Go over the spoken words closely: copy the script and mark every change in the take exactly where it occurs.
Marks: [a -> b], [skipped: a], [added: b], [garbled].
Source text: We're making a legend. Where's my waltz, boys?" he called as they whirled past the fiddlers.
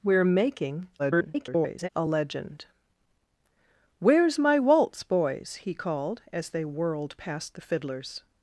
We're making [garbled] a legend. Where's my waltz, boys?" he called as they whirled past the fiddlers.